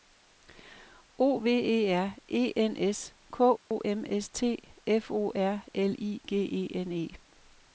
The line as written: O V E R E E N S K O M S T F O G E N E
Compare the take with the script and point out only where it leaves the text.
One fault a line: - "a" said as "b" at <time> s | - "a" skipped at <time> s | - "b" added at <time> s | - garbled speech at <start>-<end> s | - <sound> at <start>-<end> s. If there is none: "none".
- "E" skipped at 2.5 s
- dropout at 3.6-3.7 s
- "R L I" added at 5.3 s